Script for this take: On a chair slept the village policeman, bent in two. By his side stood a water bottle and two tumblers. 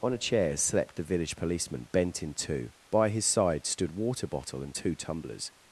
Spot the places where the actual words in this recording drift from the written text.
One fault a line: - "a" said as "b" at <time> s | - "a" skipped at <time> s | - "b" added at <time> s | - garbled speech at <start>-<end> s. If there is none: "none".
- "a" skipped at 3.9 s